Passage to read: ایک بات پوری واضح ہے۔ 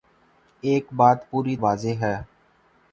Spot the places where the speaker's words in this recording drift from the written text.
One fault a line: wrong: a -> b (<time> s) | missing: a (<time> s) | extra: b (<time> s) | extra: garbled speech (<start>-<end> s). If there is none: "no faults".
no faults